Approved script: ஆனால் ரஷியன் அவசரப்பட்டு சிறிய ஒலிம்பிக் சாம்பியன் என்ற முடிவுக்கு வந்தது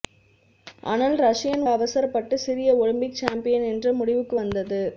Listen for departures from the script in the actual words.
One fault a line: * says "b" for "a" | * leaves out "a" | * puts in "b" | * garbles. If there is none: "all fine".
all fine